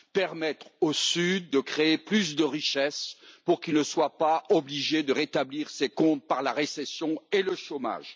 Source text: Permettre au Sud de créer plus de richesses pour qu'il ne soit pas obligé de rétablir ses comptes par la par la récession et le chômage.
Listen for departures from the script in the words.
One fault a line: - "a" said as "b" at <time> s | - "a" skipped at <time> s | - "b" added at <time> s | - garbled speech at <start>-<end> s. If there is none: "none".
- "par la" skipped at 6.5 s